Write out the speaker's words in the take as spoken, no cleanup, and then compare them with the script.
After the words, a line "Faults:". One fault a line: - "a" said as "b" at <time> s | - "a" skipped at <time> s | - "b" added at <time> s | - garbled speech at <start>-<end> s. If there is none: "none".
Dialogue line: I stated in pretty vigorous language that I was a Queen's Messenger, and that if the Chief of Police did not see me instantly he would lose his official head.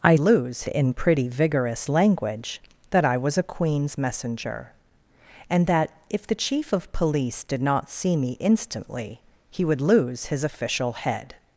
I lose in pretty vigorous language that I was a Queen's Messenger, and that if the Chief of Police did not see me instantly he would lose his official head.
Faults:
- "stated" said as "lose" at 0.2 s